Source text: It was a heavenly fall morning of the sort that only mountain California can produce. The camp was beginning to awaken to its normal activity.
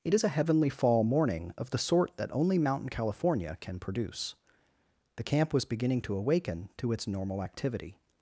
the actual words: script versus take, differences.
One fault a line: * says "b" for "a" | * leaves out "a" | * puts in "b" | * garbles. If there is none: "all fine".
* says "is" for "was"